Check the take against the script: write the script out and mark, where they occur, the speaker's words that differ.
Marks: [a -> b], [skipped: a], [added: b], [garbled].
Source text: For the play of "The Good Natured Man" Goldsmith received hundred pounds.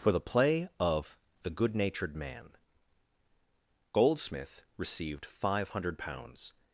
For the play of "The Good Natured Man" Goldsmith received [added: five] hundred pounds.